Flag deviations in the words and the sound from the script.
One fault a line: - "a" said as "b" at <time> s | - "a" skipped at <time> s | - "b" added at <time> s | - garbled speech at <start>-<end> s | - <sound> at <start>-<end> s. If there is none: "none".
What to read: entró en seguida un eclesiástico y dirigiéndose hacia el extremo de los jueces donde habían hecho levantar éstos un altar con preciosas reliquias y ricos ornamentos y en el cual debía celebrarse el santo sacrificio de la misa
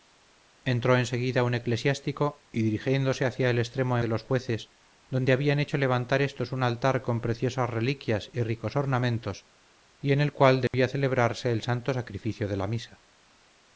- dropout at 10.7-10.7 s